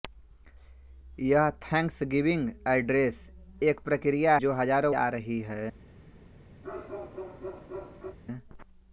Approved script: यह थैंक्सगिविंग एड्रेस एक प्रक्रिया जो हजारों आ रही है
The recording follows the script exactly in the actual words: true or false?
true